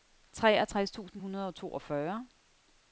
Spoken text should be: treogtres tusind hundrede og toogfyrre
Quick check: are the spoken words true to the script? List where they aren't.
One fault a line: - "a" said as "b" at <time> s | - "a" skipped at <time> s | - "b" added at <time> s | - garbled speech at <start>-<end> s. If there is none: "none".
none